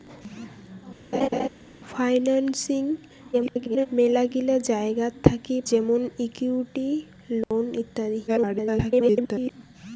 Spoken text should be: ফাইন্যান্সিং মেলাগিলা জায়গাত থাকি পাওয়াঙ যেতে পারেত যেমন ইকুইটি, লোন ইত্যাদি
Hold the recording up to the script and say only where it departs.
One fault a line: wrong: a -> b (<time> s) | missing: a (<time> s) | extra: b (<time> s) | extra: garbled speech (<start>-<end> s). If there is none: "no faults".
extra: garbled speech (3.3-3.9 s)
missing: পাওয়াঙ যেতে পারেত (5.6 s)
extra: garbled speech (8.3-9.5 s)